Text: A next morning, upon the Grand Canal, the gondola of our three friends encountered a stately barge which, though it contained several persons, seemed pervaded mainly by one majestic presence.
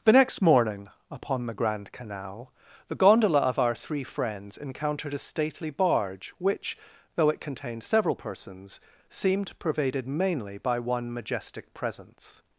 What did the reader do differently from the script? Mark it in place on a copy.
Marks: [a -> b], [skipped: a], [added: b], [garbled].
[A -> The] next morning, upon the Grand Canal, the gondola of our three friends encountered a stately barge which, though it contained several persons, seemed pervaded mainly by one majestic presence.